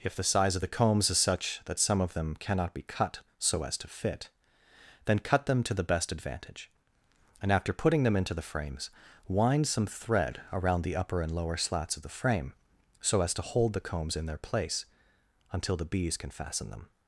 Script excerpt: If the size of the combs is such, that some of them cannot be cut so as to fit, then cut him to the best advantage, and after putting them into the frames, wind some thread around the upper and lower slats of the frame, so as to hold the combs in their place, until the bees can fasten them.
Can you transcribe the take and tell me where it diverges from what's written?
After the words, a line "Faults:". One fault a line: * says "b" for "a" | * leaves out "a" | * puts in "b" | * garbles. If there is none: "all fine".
If the size of the combs is such, that some of them cannot be cut so as to fit, then cut them to the best advantage, and after putting them into the frames, wind some thread around the upper and lower slats of the frame, so as to hold the combs in their place, until the bees can fasten them.
Faults:
* says "them" for "him"